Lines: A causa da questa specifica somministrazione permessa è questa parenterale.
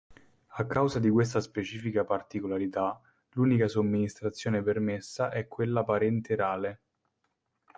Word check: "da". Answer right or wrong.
wrong